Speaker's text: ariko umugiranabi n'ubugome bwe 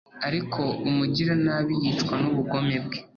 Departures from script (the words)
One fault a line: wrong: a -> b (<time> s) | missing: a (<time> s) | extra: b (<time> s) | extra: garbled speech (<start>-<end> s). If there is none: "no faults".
extra: yicwa (1.8 s)